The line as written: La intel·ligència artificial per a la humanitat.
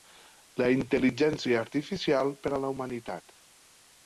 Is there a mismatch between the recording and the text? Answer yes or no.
no